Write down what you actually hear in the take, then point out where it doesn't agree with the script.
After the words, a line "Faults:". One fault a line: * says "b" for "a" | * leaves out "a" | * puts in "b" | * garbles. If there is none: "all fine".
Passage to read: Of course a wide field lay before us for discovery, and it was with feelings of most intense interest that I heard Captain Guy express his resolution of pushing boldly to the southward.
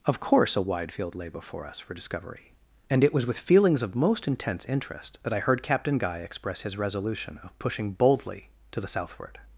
Of course a wide field lay before us for discovery, and it was with feelings of most intense interest that I heard Captain Guy express his resolution of pushing boldly to the southward.
Faults:
all fine